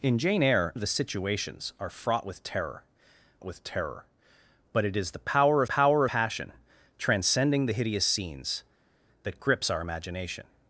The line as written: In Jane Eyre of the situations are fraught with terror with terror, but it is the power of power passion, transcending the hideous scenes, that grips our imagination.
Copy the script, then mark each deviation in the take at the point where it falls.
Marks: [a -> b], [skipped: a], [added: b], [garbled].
In Jane Eyre of the situations are fraught with terror with terror, but it is the power of power passion, transcending the hideous scenes, that grips our imagination.